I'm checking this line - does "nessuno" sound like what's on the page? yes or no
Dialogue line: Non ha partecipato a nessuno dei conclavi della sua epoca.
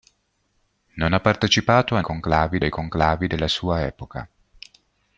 no